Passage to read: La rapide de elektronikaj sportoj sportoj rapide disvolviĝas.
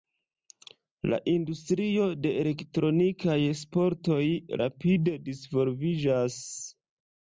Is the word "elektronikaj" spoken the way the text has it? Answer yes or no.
yes